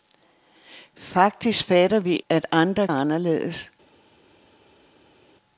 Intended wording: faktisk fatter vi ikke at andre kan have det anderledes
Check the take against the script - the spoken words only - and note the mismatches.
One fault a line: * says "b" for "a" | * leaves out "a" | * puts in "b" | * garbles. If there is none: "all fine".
* leaves out "ikke"
* leaves out "kan have det"